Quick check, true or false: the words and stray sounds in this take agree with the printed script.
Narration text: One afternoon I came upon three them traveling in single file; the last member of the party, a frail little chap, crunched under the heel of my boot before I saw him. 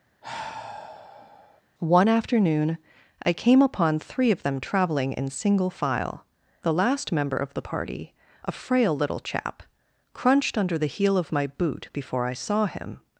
false